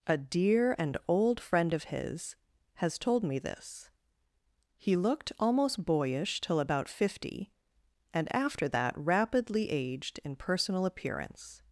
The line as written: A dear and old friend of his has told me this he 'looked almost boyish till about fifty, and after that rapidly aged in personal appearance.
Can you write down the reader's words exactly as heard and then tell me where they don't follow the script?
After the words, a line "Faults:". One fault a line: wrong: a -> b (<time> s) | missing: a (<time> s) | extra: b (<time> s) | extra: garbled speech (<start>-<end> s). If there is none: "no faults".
A dear and old friend of his has told me this he 'looked almost boyish till about fifty, and after that rapidly aged in personal appearance.
Faults:
no faults